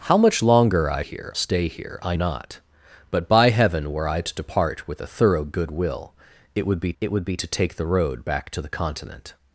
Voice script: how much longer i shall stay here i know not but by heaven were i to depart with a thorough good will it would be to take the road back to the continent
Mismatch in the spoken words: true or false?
true